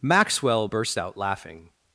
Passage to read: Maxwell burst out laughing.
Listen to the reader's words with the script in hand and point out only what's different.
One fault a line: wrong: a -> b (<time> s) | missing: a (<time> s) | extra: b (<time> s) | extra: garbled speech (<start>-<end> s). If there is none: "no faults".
no faults